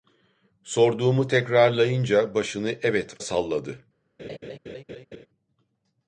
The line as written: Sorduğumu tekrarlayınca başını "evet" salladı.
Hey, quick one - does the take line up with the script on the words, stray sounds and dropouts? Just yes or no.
no